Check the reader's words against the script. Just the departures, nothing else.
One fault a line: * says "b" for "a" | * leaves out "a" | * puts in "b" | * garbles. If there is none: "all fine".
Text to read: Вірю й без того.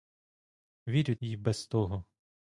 all fine